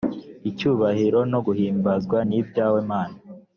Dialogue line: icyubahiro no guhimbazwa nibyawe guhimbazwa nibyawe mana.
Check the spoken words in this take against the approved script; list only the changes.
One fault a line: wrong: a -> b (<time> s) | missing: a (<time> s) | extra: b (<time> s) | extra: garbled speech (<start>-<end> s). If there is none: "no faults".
missing: guhimbazwa nibyawe (2.8 s)